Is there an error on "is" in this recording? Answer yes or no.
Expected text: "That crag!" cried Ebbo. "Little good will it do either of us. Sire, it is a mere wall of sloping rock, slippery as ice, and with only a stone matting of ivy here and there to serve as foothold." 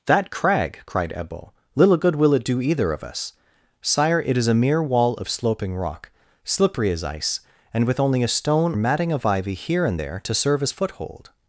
no